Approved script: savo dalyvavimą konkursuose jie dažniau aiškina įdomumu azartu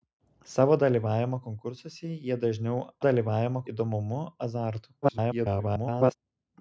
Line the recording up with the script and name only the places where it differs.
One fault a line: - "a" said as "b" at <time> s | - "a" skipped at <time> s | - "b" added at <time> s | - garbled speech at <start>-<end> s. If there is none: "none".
- "aiškina" said as "dalyvavimą" at 3.1 s
- garbled speech at 5.0-6.2 s